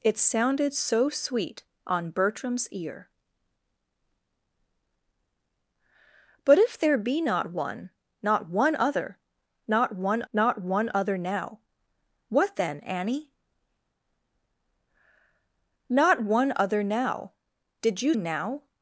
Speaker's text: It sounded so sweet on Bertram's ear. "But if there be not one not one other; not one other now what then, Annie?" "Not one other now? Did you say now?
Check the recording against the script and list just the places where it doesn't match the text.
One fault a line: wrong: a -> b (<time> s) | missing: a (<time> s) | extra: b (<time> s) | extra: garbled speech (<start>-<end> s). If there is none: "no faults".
extra: not one (10.3 s)
missing: say (18.1 s)